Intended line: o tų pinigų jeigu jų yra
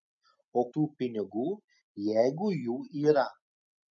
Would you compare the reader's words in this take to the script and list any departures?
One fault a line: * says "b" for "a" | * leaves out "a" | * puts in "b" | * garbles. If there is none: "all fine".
all fine